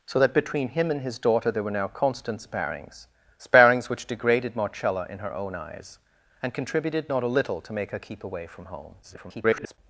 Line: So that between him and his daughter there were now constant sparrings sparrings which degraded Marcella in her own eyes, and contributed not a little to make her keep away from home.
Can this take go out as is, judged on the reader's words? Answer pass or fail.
fail